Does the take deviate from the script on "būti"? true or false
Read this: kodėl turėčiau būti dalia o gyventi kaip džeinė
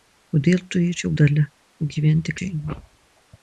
true